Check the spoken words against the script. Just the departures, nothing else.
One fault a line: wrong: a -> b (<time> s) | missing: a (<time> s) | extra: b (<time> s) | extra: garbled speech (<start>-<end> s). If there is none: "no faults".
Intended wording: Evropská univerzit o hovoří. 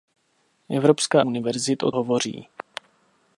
no faults